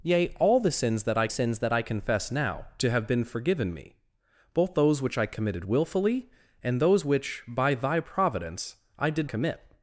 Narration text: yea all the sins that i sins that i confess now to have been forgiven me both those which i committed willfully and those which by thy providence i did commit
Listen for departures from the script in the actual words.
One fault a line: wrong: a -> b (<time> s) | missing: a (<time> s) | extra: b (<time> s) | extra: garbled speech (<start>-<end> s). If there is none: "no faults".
no faults